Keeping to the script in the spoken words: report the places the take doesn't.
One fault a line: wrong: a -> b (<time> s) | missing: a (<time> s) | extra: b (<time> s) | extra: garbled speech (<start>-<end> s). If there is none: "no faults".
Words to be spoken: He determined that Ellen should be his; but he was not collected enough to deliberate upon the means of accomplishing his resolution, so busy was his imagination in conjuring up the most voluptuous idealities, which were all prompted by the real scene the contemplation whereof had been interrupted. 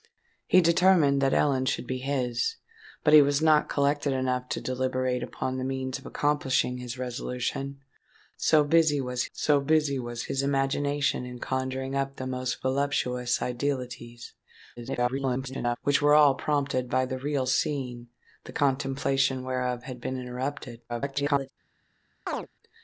extra: so busy was (9.3 s)
extra: garbled speech (14.8-15.8 s)
extra: garbled speech (20.9-21.5 s)